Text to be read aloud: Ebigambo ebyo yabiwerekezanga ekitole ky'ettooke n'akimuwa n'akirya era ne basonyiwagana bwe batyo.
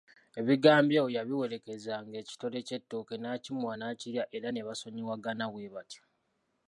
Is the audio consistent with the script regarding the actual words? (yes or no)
yes